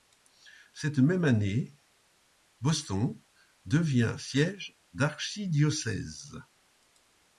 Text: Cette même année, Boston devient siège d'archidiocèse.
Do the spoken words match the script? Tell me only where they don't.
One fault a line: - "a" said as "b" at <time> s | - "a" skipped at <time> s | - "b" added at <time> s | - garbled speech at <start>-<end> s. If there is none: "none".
none